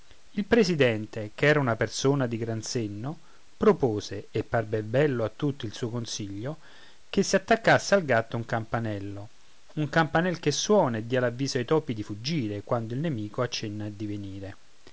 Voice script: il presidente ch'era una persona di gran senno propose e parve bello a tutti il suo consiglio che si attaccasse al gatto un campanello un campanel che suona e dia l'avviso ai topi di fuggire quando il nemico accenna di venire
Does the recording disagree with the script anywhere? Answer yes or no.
no